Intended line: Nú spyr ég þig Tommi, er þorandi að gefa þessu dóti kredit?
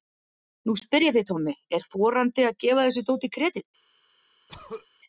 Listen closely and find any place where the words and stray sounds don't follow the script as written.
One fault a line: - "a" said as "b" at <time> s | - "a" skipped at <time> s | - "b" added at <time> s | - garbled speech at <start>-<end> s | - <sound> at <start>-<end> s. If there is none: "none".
- throat clearing at 4.5-4.9 s